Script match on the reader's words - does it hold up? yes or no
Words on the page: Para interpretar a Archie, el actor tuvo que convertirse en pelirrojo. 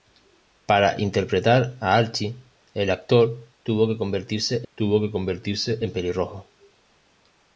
no